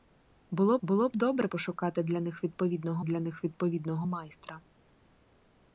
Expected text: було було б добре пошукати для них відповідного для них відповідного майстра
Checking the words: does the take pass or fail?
pass